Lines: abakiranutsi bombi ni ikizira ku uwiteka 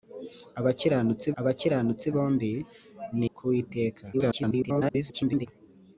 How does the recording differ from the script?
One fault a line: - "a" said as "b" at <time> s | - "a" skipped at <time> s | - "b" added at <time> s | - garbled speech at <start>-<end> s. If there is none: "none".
- "abakiranutsi" added at 1.4 s
- "ikizira" skipped at 3.3 s
- garbled speech at 4.1-5.5 s